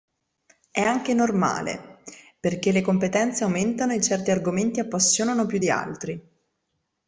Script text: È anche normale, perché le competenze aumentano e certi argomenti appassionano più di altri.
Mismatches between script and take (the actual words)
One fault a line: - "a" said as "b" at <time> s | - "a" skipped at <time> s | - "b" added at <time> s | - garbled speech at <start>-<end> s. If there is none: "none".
none